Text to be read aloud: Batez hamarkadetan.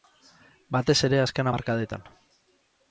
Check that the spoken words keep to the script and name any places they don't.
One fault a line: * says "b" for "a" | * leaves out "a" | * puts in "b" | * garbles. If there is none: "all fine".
* puts in "ere azken"